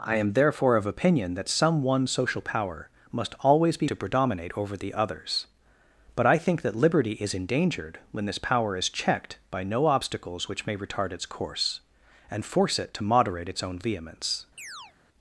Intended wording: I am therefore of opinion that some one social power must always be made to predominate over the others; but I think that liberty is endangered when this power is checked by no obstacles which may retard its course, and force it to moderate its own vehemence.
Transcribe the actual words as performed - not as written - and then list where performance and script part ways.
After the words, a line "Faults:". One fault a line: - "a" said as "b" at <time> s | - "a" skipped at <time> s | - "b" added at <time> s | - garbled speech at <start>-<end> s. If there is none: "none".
I am therefore of opinion that some one social power must always be to predominate over the others; but I think that liberty is endangered when this power is checked by no obstacles which may retard its course, and force it to moderate its own vehemence.
Faults:
- "made" skipped at 3.9 s